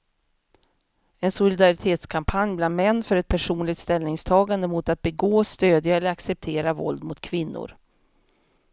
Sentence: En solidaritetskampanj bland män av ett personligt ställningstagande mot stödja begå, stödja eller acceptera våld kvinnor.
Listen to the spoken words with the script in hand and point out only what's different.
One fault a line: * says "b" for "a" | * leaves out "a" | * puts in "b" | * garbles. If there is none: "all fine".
* says "för" for "av"
* says "att" for "stödja"
* puts in "mot"